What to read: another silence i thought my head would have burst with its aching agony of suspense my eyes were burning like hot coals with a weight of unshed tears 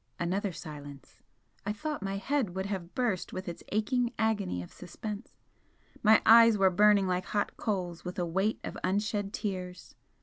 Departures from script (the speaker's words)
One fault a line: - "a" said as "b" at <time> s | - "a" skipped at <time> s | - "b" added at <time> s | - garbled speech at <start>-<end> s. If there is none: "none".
none